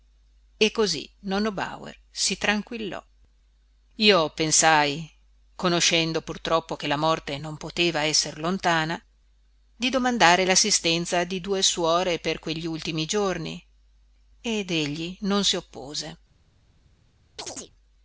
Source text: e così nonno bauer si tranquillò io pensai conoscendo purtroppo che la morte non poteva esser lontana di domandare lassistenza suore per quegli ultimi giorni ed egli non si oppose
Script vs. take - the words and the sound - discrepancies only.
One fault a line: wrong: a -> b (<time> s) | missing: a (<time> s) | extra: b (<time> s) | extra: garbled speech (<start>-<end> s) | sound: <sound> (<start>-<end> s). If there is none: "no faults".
extra: di due (11.2 s)
sound: chirp (17.4-17.7 s)